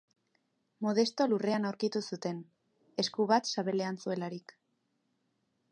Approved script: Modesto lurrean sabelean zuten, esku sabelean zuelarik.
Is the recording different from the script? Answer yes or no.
yes